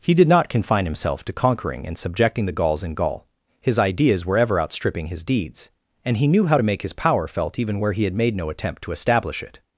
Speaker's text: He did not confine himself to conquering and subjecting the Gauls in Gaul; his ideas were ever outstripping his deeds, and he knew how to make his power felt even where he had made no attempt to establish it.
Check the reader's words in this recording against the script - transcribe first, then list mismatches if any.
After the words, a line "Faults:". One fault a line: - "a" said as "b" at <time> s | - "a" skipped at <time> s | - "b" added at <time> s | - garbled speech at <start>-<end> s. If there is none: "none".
He did not confine himself to conquering and subjecting the Gauls in Gaul; his ideas were ever outstripping his deeds, and he knew how to make his power felt even where he had made no attempt to establish it.
Faults:
none